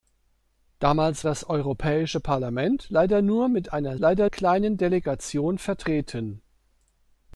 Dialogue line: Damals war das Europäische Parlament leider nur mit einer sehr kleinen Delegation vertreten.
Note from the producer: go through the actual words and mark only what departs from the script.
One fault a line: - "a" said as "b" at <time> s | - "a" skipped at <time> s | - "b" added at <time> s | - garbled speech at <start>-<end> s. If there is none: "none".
- "war" skipped at 1.3 s
- "sehr" said as "leider" at 4.0 s